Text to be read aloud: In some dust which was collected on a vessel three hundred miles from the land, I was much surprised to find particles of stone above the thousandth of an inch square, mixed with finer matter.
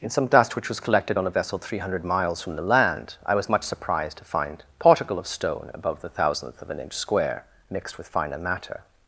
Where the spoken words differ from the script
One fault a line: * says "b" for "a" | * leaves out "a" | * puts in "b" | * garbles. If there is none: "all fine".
* says "particle" for "particles"